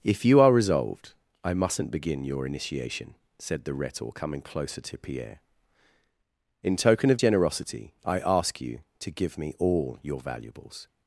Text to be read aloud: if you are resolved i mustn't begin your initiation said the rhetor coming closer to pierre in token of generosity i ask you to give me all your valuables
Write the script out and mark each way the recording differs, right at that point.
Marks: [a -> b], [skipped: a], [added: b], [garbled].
if you are resolved i mustn't begin your initiation said the rhetor coming closer to pierre in token of generosity i ask you to give me all your valuables